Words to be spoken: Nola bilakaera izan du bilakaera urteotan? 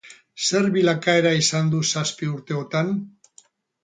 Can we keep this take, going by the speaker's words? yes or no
no